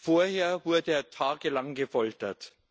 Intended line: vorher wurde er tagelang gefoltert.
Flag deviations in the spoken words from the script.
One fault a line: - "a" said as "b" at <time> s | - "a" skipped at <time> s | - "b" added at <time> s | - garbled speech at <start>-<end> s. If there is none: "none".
none